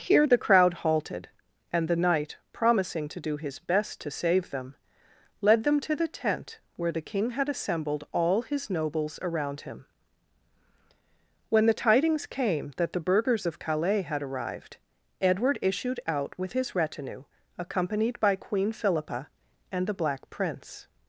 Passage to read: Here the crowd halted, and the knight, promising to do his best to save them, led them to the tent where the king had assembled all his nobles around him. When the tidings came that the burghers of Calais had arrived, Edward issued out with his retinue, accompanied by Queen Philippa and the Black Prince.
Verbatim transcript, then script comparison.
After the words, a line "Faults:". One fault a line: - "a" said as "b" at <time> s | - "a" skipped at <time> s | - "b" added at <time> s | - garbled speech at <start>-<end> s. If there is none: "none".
Here the crowd halted, and the knight, promising to do his best to save them, led them to the tent where the king had assembled all his nobles around him. When the tidings came that the burghers of Calais had arrived, Edward issued out with his retinue, accompanied by Queen Philippa and the Black Prince.
Faults:
none